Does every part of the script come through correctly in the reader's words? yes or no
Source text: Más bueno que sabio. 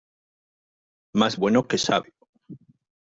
yes